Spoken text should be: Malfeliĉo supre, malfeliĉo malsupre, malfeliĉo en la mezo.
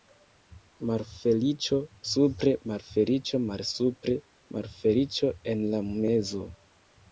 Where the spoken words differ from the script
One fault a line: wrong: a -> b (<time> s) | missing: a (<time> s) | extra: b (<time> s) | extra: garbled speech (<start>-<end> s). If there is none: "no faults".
no faults